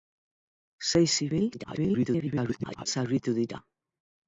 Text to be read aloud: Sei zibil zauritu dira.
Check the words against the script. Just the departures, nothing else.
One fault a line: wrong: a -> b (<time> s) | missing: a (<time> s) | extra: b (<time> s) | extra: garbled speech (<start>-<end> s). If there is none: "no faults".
extra: garbled speech (1.5-2.9 s)